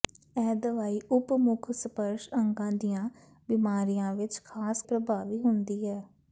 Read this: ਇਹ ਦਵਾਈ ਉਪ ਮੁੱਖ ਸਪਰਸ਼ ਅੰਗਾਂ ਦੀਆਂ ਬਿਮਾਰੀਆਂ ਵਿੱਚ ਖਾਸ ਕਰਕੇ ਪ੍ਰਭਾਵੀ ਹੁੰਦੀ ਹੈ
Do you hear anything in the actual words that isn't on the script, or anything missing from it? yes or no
yes